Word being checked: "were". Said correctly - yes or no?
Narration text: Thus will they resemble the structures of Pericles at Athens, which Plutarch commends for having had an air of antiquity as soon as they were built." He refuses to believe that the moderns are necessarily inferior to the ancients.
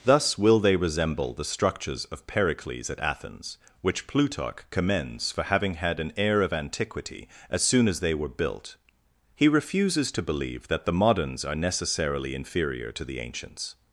yes